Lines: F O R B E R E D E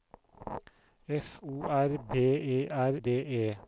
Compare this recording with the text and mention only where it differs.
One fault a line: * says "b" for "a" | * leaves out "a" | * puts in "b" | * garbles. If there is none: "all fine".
* leaves out "E"